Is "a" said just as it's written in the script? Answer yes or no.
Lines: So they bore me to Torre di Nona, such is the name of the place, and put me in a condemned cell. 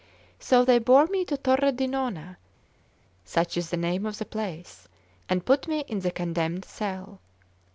no